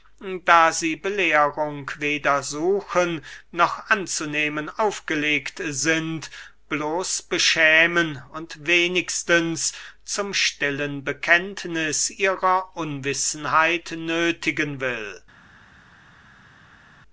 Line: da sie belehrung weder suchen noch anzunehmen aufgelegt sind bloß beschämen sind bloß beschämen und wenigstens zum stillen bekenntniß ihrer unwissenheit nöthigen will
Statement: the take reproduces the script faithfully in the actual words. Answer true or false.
false